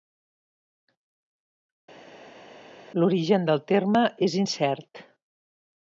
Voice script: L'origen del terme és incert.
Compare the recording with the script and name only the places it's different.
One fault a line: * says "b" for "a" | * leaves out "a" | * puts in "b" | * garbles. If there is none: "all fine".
all fine